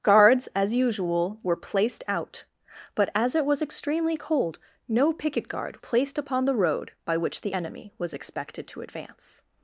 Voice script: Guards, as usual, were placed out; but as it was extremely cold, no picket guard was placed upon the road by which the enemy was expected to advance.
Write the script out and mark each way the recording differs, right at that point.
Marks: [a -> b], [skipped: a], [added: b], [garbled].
Guards, as usual, were placed out; but as it was extremely cold, no picket guard [skipped: was] placed upon the road by which the enemy was expected to advance.